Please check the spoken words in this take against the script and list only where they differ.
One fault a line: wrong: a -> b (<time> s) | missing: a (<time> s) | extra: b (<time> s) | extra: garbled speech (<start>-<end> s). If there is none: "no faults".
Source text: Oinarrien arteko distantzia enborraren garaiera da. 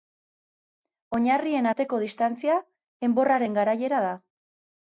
no faults